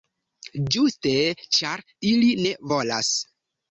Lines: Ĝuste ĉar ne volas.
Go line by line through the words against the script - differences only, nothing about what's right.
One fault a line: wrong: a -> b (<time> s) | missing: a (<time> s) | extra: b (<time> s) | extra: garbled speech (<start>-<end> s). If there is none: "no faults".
extra: ili (2.1 s)